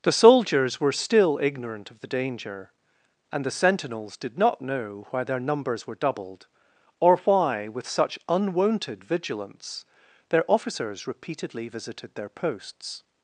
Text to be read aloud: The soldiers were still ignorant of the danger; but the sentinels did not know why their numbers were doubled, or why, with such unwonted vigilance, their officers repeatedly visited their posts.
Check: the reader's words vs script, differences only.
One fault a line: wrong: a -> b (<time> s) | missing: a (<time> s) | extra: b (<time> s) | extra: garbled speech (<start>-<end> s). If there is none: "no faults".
wrong: but -> and (3.3 s)